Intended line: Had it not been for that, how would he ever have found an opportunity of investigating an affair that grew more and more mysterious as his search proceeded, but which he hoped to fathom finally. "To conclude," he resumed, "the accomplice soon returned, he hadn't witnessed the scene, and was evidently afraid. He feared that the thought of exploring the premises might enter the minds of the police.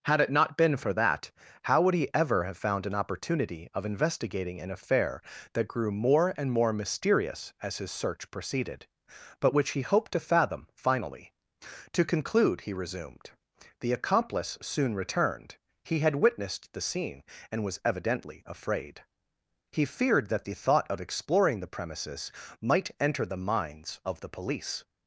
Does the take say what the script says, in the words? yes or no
no